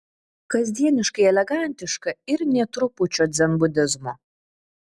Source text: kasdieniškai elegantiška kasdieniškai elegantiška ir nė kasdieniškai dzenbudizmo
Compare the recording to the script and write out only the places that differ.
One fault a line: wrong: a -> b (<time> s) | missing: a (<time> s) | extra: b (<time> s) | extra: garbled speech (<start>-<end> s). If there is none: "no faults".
missing: kasdieniškai elegantiška (2.1 s)
wrong: kasdieniškai -> trupučio (2.8 s)